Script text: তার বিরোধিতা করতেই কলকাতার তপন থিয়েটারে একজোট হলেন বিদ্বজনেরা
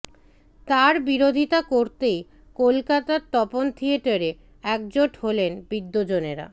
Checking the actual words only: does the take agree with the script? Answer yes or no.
yes